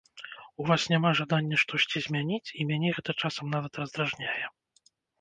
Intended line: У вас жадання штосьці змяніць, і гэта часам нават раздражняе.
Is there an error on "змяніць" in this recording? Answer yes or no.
no